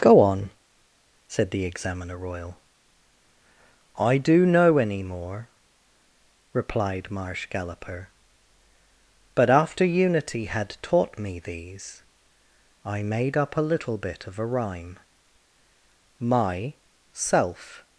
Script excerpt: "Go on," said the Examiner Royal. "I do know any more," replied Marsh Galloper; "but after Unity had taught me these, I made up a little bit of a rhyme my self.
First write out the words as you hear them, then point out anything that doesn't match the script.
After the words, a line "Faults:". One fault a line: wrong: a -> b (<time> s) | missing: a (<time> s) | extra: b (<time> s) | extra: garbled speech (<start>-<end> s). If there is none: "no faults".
"Go on," said the Examiner Royal. "I do know any more," replied Marsh Galloper; "but after Unity had taught me these, I made up a little bit of a rhyme my self.
Faults:
no faults